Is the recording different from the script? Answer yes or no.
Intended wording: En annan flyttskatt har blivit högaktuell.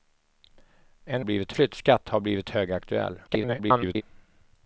yes